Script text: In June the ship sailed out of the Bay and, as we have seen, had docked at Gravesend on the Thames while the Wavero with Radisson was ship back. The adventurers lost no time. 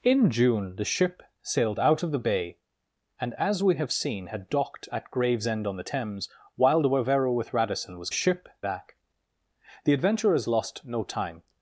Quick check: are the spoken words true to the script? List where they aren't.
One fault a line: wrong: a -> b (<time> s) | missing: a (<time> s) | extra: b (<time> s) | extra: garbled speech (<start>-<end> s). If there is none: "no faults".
no faults